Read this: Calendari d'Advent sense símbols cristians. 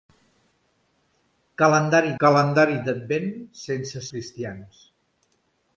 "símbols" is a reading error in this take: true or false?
true